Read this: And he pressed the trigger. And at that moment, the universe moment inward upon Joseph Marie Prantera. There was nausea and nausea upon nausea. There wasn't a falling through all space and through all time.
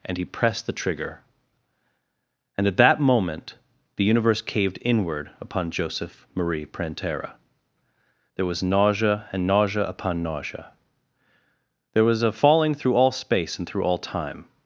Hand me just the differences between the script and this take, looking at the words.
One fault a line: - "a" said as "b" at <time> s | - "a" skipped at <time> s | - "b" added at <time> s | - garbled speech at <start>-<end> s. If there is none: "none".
- "moment" said as "caved" at 4.4 s
- "wasn't" said as "was" at 12.0 s